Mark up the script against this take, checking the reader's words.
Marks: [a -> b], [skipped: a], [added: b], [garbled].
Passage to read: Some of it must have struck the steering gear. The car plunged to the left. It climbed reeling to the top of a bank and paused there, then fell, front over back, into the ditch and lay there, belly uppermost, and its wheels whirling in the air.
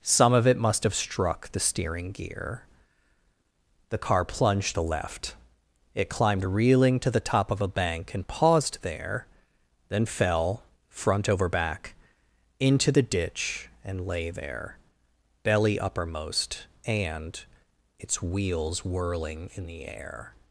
Some of it must have struck the steering gear. The car plunged [skipped: to] the left. It climbed reeling to the top of a bank and paused there, then fell, front over back, into the ditch and lay there, belly uppermost, and its wheels whirling in the air.